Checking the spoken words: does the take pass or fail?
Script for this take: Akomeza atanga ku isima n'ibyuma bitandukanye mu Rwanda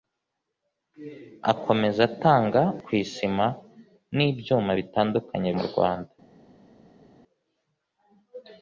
pass